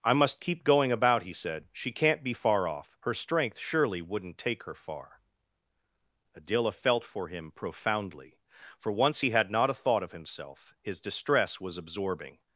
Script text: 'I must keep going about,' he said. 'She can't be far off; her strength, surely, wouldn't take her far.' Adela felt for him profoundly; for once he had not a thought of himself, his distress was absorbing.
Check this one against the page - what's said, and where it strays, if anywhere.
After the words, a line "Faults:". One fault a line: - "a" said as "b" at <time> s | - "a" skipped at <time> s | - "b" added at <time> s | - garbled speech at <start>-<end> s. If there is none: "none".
'I must keep going about,' he said. 'She can't be far off; her strength, surely, wouldn't take her far.' Adela felt for him profoundly; for once he had not a thought of himself, his distress was absorbing.
Faults:
none